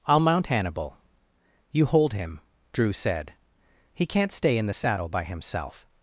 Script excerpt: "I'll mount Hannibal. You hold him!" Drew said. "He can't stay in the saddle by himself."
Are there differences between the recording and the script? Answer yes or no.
no